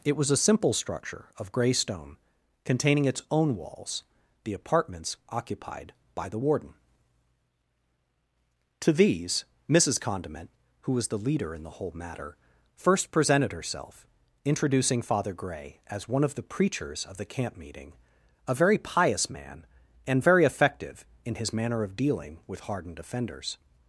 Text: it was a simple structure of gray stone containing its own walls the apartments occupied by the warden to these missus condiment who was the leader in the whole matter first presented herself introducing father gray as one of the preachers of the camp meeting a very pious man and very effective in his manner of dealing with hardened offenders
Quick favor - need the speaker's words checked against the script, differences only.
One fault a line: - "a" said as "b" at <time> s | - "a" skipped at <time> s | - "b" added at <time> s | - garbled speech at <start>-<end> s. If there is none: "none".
none